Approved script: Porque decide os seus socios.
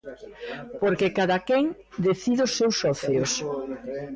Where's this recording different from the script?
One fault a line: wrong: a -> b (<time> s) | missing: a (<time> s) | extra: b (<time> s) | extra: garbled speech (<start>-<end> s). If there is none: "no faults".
extra: cadaquén (1.2 s)